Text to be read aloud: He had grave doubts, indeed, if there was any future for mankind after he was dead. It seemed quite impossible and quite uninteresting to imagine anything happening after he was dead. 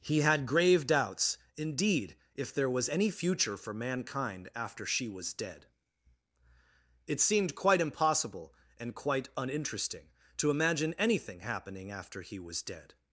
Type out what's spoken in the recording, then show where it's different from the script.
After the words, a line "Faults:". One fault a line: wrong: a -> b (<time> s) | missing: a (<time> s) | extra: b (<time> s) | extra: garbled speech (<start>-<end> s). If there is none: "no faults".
He had grave doubts, indeed, if there was any future for mankind after she was dead. It seemed quite impossible and quite uninteresting to imagine anything happening after he was dead.
Faults:
wrong: he -> she (4.8 s)